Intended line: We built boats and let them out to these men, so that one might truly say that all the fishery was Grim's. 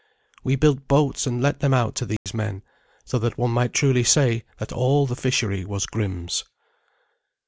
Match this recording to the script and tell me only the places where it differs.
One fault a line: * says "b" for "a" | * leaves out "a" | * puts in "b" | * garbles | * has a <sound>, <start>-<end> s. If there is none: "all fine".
* has a dropout, 2.2-2.3 s